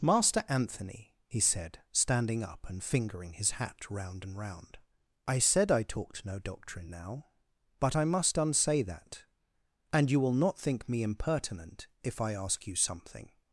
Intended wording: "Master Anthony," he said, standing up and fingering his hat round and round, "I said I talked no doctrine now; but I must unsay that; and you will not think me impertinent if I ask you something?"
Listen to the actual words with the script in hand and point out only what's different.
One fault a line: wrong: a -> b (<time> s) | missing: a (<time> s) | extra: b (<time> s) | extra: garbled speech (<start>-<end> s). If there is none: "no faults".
no faults